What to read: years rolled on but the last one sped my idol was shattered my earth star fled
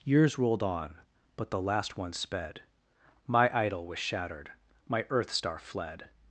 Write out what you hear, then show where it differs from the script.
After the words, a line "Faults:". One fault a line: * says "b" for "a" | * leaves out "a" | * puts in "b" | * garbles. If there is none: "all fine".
years rolled on but the last one sped my idol was shattered my earth star fled
Faults:
all fine